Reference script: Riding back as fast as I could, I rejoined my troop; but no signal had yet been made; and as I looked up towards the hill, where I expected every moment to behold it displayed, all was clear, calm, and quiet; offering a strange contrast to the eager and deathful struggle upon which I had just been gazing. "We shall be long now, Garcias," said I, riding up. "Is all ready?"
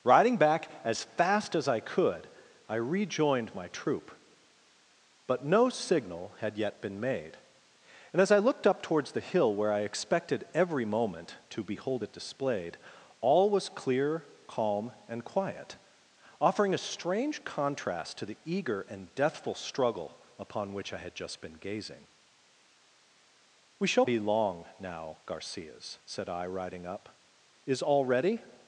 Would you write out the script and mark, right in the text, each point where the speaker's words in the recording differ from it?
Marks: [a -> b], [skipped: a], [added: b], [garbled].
Riding back as fast as I could, I rejoined my troop; but no signal had yet been made; and as I looked up towards the hill, where I expected every moment to behold it displayed, all was clear, calm, and quiet; offering a strange contrast to the eager and deathful struggle upon which I had just been gazing. "We shall be long now, Garcias," said I, riding up. "Is all ready?"